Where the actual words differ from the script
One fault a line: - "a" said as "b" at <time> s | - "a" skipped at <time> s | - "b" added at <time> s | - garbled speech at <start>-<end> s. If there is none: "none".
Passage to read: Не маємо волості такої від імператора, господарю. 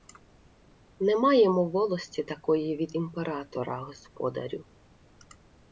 none